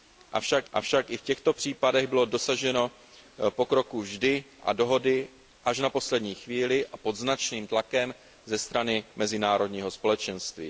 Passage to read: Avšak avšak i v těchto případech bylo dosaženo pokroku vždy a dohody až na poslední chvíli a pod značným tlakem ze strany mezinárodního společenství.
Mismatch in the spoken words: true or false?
false